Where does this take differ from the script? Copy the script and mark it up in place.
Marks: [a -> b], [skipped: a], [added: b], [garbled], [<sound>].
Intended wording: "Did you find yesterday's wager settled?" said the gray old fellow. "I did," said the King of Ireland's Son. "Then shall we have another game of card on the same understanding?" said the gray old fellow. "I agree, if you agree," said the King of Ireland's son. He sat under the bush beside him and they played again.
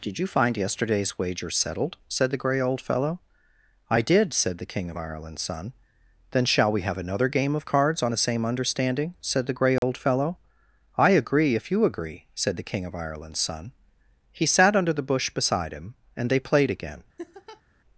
"Did you find yesterday's wager settled?" said the gray old fellow. "I did," said the King of Ireland's Son. "Then shall we have another game of [card -> cards] on the same understanding?" said the gray old [dropout] fellow. "I agree, if you agree," said the King of Ireland's son. He sat under the bush beside him and they played again. [laugh]